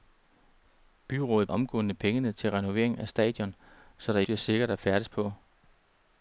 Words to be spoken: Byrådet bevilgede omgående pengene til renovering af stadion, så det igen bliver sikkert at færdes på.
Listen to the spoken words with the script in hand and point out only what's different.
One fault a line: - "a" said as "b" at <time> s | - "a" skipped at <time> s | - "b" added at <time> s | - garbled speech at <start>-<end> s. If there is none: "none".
- "bevilgede" skipped at 1.5 s
- "igen" skipped at 4.2 s